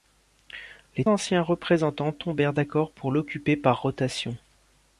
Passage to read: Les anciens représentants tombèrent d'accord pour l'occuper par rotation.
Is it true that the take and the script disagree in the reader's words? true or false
false